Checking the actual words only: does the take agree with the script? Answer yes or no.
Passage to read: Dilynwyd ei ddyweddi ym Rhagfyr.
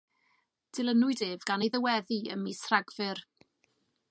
no